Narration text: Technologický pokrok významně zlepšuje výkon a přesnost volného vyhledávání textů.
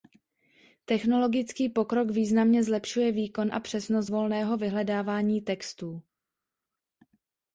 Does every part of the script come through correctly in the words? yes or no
yes